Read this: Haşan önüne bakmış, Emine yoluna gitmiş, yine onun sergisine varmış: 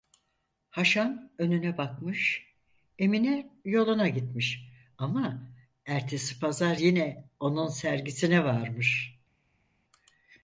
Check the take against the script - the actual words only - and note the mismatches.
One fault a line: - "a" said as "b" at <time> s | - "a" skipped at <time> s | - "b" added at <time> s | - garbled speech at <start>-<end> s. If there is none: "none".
- "ama ertesi pazar" added at 5.0 s